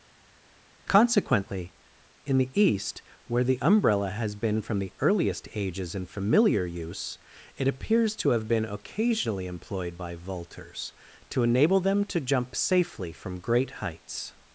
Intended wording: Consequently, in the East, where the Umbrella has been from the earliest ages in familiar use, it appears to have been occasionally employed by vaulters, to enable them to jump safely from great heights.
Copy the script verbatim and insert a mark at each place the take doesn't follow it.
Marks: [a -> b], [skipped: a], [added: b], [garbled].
Consequently, in the East, where the Umbrella has been from the earliest ages in familiar use, it appears to have been occasionally employed by vaulters, to enable them to jump safely from great heights.